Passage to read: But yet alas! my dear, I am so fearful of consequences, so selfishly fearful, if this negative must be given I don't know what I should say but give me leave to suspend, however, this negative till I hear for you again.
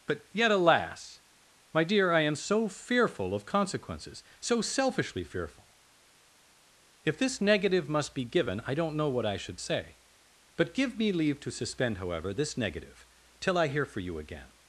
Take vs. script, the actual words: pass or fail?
pass